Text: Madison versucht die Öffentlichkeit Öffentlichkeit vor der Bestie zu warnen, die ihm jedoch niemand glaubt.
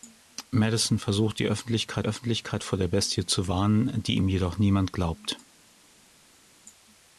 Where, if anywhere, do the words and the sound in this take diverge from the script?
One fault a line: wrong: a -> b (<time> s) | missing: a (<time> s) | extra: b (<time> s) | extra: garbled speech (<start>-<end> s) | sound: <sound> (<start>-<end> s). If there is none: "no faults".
no faults